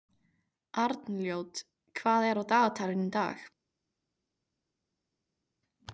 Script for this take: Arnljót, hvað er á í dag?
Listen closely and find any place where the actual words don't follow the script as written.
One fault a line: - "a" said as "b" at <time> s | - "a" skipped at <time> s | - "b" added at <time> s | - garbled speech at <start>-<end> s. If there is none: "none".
- "dagatalinu" added at 2.5 s